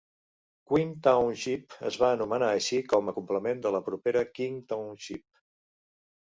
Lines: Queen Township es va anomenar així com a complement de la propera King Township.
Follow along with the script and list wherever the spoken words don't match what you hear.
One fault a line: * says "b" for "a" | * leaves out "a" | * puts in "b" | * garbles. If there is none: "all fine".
all fine